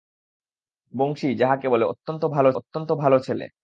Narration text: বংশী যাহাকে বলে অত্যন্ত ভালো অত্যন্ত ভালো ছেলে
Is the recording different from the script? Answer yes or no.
no